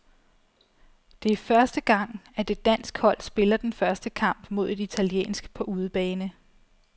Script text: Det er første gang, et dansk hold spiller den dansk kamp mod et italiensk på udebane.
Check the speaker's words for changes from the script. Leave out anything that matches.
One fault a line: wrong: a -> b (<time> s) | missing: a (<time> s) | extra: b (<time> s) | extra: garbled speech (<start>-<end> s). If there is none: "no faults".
extra: at (2.4 s)
wrong: dansk -> første (3.7 s)